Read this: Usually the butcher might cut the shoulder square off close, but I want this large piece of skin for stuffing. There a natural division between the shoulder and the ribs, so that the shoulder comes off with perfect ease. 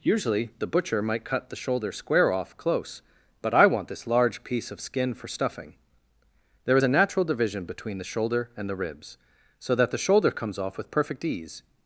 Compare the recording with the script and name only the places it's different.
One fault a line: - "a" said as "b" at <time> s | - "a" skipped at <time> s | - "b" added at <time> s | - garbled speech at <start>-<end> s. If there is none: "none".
none